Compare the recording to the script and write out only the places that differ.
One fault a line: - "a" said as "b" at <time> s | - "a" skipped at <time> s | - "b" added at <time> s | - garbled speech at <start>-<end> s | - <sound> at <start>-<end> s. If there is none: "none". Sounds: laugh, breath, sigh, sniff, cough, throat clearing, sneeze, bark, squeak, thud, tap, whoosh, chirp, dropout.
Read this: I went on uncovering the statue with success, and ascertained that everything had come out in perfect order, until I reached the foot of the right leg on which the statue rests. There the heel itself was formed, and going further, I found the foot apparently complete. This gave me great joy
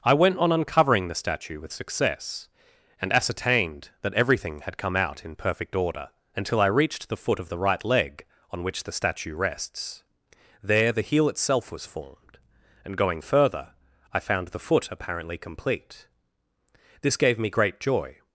none